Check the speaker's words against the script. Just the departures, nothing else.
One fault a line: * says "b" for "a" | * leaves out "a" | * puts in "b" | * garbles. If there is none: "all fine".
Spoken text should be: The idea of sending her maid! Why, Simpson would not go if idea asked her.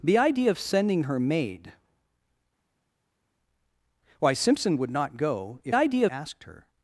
all fine